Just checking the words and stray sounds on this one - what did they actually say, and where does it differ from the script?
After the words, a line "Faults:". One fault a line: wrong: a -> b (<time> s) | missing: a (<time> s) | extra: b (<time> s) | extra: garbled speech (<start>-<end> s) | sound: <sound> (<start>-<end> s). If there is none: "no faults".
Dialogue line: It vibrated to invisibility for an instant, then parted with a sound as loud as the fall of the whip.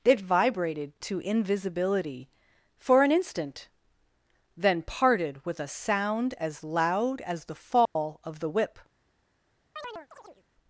It vibrated to invisibility for an instant, then parted with a sound as loud as the fall of the whip.
Faults:
sound: dropout (7.9-8.0 s)
sound: chirp (9.8-10.4 s)